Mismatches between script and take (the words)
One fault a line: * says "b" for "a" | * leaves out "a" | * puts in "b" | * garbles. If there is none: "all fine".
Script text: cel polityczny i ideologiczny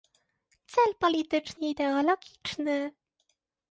all fine